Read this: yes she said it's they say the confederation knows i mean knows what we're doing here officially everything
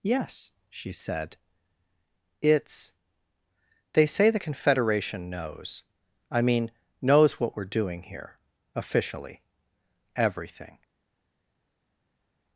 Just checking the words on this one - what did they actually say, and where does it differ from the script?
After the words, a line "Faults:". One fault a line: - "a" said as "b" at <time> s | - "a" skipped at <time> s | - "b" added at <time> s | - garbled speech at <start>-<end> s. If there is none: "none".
yes she said it's they say the confederation knows i mean knows what we're doing here officially everything
Faults:
none